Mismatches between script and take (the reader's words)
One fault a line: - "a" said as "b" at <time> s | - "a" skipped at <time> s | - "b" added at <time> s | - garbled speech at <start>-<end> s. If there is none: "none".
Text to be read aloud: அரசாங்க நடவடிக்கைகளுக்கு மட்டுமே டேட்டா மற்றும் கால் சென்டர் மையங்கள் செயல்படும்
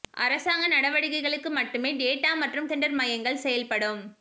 - "கால்" skipped at 2.7 s